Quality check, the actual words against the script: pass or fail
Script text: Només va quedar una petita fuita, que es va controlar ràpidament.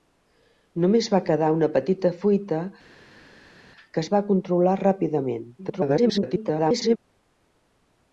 fail